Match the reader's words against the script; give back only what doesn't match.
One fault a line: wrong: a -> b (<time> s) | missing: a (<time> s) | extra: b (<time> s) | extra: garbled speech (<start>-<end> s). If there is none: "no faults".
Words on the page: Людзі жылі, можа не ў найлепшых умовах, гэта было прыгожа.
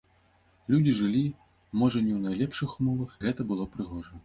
no faults